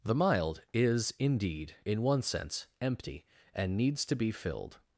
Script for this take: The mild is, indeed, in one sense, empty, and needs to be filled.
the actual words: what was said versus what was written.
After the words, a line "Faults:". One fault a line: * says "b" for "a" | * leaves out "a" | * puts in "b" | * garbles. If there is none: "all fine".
The mild is, indeed, in one sense, empty, and needs to be filled.
Faults:
all fine